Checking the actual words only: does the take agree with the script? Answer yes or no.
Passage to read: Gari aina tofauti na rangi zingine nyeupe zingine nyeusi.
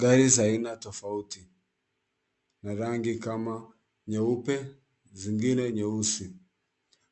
no